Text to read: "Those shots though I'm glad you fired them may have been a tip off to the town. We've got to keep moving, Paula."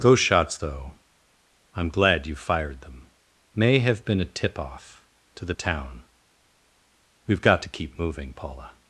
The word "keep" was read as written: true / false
true